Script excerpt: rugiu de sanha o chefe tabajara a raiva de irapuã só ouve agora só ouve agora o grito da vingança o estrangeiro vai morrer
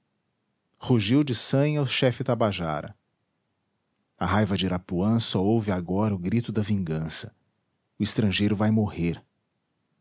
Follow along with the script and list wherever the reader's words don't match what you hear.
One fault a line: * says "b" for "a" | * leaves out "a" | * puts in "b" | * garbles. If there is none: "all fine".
* leaves out "só ouve agora"